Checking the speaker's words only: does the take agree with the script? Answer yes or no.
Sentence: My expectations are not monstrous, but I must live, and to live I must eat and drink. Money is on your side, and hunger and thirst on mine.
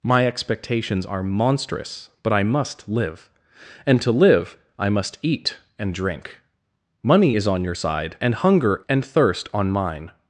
no